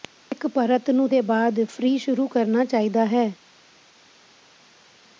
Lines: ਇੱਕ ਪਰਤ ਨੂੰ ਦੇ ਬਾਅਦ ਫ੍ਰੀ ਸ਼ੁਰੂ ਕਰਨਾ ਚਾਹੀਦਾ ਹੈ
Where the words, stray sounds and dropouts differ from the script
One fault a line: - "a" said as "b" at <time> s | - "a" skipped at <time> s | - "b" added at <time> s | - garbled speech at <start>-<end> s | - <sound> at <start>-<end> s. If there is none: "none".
none